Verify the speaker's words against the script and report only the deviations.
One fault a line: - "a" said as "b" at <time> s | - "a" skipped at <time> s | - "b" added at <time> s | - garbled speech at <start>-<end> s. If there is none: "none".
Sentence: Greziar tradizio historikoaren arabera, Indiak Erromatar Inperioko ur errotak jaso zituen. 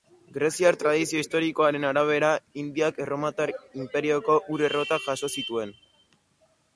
none